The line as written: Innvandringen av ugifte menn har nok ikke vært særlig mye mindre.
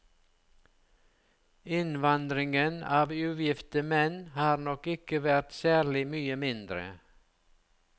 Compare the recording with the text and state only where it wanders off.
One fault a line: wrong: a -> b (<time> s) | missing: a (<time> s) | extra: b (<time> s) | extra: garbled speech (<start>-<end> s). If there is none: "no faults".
no faults